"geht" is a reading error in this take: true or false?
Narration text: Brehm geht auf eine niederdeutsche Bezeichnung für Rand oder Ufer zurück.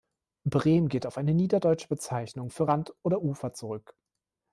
false